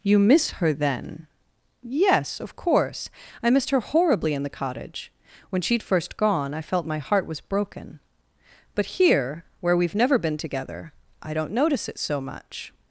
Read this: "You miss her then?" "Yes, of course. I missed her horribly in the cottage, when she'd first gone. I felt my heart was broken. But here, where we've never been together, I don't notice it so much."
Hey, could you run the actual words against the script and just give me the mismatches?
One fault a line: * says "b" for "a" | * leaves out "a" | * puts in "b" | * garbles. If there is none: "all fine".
all fine